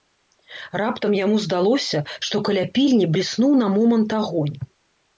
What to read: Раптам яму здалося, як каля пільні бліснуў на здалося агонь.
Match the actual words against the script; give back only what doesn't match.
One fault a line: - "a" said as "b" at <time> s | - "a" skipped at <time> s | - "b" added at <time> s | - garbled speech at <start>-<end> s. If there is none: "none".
- "як" said as "што" at 2.3 s
- "здалося" said as "момант" at 3.8 s